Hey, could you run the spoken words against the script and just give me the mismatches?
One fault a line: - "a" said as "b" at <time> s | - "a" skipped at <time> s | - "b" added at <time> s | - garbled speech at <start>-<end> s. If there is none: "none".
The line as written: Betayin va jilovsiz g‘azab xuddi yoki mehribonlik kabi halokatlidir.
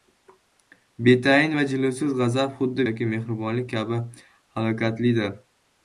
none